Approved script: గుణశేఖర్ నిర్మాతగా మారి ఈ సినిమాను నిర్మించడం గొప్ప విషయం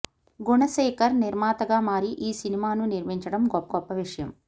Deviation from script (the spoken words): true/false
true